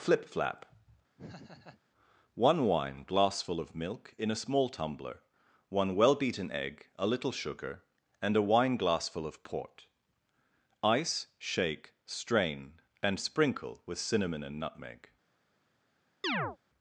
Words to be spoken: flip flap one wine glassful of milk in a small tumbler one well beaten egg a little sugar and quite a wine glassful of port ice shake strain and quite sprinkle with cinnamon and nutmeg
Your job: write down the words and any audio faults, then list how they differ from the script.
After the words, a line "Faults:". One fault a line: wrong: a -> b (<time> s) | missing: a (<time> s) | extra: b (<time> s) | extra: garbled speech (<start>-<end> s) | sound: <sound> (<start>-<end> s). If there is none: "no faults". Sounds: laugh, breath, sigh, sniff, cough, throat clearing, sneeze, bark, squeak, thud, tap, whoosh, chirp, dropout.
flip flap one wine glassful of milk in a small tumbler one well beaten egg a little sugar and a wine glassful of port ice shake strain and sprinkle with cinnamon and nutmeg
Faults:
sound: laugh (1.2-1.8 s)
missing: quite (8.3 s)
missing: quite (13.2 s)
sound: chirp (16.2-16.6 s)